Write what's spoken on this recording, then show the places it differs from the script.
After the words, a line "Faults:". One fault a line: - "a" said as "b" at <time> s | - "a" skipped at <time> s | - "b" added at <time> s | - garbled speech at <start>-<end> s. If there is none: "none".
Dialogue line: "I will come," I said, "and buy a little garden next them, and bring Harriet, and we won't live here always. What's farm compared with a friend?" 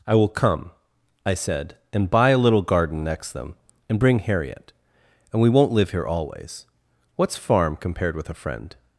"I will come," I said, "and buy a little garden next them, and bring Harriet, and we won't live here always. What's farm compared with a friend?"
Faults:
none